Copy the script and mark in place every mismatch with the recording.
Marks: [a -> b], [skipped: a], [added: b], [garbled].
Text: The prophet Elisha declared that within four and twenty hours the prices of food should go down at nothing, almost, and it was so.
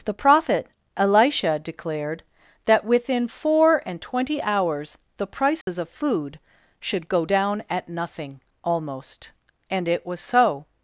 The prophet Elisha declared that within four and twenty hours the prices of food should go down at nothing, almost, and it was so.